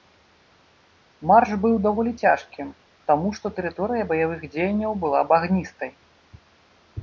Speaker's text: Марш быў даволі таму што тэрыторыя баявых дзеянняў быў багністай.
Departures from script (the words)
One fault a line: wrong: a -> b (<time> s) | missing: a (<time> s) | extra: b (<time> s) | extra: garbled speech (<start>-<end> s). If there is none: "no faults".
extra: цяжкім (2.2 s)
wrong: быў -> была (5.1 s)